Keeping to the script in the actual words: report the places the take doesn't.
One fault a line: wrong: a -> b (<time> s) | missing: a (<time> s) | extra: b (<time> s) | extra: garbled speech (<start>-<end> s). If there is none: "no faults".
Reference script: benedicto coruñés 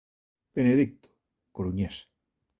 no faults